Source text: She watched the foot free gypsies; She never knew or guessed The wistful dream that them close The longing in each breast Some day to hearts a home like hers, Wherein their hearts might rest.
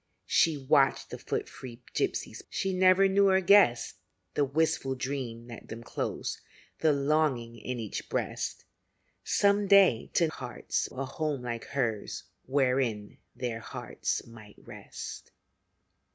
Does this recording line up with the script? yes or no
yes